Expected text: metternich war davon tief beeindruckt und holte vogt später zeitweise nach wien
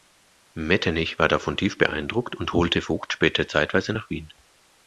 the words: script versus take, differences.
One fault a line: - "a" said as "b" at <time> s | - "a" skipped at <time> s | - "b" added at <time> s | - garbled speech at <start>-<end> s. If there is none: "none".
none